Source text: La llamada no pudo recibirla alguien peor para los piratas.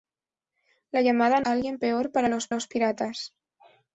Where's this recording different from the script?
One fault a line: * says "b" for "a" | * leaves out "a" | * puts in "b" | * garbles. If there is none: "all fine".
* leaves out "no pudo recibirla"
* puts in "los"